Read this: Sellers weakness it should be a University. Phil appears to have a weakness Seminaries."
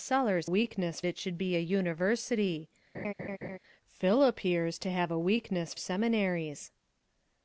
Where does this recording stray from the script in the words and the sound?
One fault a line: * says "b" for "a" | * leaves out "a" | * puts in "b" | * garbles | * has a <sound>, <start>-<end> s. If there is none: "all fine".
* has a laugh, 2.9-3.6 s